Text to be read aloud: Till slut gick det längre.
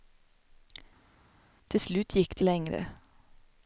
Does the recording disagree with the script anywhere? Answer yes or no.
no